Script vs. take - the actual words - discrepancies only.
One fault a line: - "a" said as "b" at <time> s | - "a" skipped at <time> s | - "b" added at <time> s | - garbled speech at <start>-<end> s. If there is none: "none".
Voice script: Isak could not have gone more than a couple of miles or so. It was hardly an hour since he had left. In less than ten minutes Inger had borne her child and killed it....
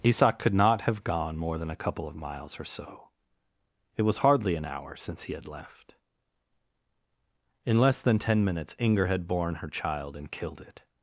none